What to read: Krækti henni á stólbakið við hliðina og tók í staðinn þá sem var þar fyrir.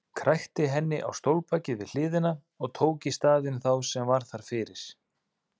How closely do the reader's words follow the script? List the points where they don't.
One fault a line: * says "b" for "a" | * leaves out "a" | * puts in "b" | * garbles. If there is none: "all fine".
all fine